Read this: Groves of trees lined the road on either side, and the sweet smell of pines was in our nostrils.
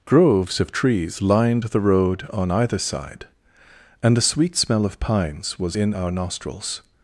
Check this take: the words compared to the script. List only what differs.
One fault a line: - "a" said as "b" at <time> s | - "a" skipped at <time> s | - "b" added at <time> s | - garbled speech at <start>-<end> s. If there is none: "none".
none